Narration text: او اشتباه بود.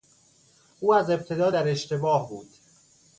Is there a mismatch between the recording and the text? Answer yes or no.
yes